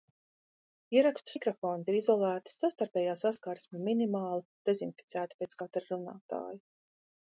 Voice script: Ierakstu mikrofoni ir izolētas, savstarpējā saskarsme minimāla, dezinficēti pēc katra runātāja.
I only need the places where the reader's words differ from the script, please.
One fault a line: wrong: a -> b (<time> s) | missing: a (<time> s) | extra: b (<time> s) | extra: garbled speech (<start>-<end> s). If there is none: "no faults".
no faults